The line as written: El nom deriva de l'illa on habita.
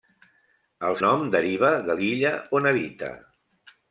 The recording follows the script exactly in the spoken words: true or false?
true